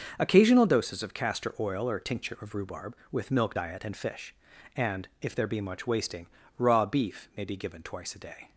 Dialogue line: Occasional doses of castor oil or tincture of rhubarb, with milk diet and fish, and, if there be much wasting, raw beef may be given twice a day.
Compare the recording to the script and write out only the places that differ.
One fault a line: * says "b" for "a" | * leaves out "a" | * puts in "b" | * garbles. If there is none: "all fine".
all fine